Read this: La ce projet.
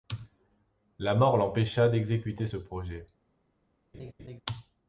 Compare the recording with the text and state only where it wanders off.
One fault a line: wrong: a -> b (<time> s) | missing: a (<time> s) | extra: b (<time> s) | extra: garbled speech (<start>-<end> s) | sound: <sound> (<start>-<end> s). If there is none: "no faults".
extra: mort l'empêcha d'exécuter (1.1 s)
sound: laugh (3.9-4.4 s)